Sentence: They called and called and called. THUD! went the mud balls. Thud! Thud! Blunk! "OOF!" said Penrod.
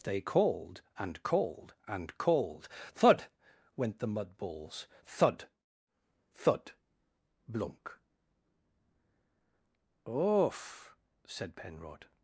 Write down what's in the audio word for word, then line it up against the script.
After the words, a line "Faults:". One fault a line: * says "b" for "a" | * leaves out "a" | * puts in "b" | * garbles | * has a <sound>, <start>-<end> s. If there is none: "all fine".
They called and called and called. THUD! went the mud balls. Thud! Thud! Blunk! "OOF!" said Penrod.
Faults:
all fine